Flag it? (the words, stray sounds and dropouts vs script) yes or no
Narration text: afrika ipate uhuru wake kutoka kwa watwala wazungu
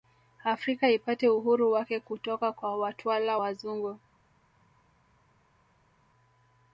no